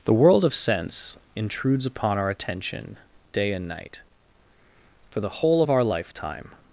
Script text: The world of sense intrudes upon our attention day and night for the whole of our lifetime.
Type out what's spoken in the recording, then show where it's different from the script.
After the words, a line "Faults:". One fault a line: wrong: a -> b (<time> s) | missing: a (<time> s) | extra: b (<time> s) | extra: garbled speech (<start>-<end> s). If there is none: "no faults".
The world of sense intrudes upon our attention day and night for the whole of our lifetime.
Faults:
no faults